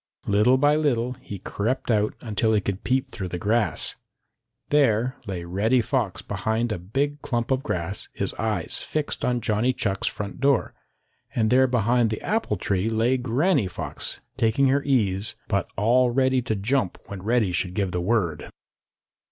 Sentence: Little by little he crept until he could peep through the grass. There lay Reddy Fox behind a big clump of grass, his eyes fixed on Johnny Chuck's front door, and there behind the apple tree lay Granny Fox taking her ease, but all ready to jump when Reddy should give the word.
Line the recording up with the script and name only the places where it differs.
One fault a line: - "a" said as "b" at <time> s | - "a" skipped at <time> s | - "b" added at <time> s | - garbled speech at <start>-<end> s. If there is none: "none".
- "out" added at 1.9 s